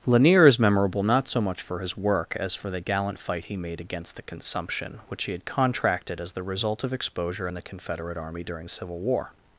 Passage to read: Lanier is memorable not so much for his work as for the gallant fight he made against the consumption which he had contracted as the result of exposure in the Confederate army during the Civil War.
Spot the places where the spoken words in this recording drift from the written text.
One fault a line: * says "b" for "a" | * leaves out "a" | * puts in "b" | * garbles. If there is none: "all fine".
all fine